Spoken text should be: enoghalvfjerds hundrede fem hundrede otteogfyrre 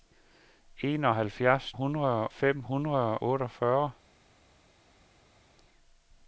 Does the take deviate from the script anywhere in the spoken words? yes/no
no